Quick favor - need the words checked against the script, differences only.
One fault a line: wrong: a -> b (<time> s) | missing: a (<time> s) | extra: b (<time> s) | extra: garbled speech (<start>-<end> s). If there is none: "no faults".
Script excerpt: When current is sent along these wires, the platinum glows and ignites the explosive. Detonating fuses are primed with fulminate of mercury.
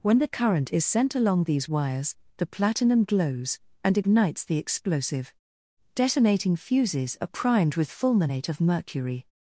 extra: the (0.2 s)